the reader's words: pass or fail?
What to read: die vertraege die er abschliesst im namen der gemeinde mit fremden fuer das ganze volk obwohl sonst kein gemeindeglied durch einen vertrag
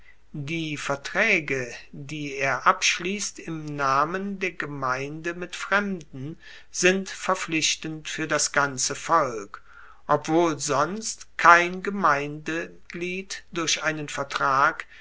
fail